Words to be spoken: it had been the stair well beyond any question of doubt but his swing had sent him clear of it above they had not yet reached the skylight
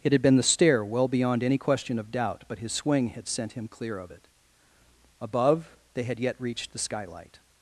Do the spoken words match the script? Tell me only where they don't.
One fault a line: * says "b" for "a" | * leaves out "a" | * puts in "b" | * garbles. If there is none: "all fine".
* leaves out "not"